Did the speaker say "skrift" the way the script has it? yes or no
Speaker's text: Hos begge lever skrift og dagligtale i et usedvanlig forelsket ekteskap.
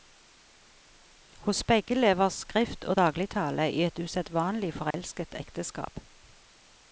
yes